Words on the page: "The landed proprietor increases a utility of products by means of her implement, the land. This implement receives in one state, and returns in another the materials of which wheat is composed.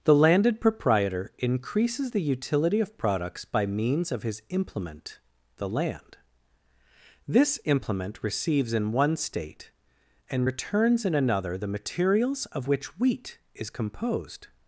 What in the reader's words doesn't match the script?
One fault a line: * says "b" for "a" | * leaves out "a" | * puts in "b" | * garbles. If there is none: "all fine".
* says "the" for "a"
* says "his" for "her"